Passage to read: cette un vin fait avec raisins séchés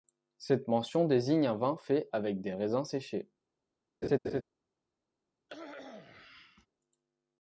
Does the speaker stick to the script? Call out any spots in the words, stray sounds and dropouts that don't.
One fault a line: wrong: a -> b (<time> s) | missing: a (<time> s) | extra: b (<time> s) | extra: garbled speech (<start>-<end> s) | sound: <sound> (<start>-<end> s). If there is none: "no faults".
extra: mention désigne (0.7 s)
extra: des (2.4 s)
sound: laugh (4.0-4.4 s)
sound: cough (5.5-6.7 s)